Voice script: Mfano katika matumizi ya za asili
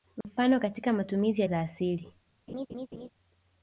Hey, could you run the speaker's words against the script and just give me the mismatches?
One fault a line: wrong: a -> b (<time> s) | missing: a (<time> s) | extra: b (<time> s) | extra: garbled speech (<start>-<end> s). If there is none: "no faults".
no faults